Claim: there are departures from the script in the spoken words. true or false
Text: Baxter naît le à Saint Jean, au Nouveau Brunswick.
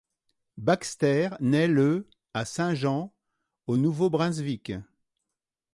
false